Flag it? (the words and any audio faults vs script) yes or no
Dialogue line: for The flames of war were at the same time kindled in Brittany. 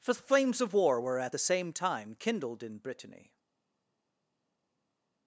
no